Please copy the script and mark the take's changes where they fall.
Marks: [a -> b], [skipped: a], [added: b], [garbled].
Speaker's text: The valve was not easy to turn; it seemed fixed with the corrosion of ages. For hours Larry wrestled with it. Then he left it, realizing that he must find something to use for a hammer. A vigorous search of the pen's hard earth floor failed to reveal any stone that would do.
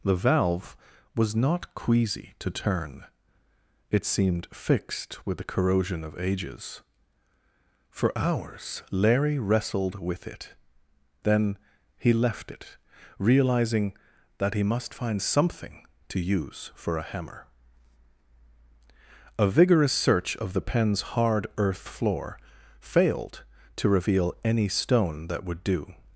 The valve was not [easy -> queasy] to turn; it seemed fixed with the corrosion of ages. For hours Larry wrestled with it. Then he left it, realizing that he must find something to use for a hammer. A vigorous search of the pen's hard earth floor failed to reveal any stone that would do.